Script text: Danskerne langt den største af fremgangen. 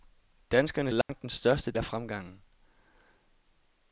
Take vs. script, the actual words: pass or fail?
pass